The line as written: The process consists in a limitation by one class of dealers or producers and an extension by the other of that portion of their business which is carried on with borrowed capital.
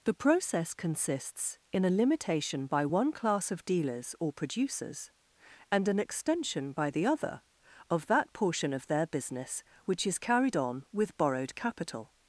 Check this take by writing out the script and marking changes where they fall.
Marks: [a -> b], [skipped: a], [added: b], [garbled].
The process consists in a limitation by one class of dealers or producers and an extension by the other of that portion of their business which is carried on with borrowed capital.